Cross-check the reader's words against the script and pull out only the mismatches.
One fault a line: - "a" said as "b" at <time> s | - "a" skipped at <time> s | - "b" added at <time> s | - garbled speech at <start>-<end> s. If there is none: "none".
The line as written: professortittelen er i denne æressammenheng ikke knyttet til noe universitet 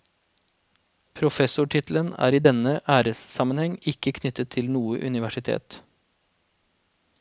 none